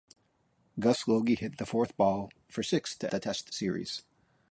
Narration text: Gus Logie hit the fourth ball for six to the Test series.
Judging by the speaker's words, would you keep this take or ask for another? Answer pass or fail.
pass